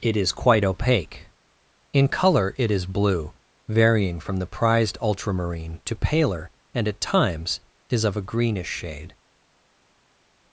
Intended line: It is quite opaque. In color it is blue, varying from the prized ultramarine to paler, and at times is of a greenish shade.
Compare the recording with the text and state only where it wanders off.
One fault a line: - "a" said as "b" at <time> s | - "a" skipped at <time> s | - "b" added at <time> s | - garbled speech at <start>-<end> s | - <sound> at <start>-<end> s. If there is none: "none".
none